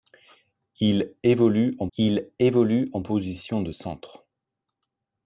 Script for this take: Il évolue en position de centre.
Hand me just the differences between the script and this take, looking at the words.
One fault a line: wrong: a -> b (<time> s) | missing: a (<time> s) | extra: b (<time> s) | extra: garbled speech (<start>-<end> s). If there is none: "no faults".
extra: il évolue en (2.0 s)